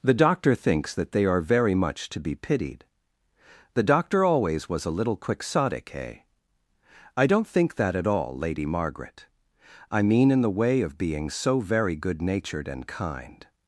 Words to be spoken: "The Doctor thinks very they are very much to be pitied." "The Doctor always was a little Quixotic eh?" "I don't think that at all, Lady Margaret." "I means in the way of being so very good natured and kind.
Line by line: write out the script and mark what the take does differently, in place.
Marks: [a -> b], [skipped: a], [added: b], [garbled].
"The Doctor thinks [very -> that] they are very much to be pitied." "The Doctor always was a little Quixotic eh?" "I don't think that at all, Lady Margaret." "I [means -> mean] in the way of being so very good natured and kind.